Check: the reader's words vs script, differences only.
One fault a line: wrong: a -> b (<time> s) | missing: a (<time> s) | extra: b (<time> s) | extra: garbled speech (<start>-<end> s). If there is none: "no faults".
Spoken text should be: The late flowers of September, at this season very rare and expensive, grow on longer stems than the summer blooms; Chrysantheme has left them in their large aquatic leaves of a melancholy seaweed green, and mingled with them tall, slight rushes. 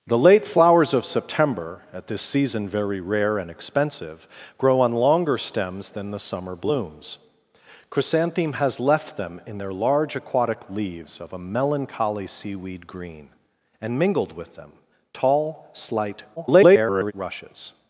extra: garbled speech (16.4-17.1 s)